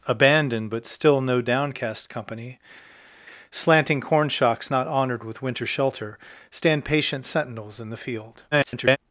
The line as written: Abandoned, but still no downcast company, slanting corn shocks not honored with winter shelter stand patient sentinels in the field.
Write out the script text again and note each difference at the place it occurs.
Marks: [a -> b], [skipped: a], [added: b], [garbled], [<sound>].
Abandoned, but still no downcast company, slanting corn shocks not honored with winter shelter stand patient sentinels in the field. [garbled]